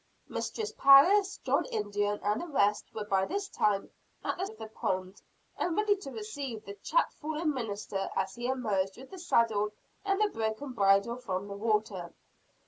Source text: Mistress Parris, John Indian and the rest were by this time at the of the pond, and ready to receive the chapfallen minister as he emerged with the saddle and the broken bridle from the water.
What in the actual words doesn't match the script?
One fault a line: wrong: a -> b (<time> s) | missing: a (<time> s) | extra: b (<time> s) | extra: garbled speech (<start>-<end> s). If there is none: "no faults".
no faults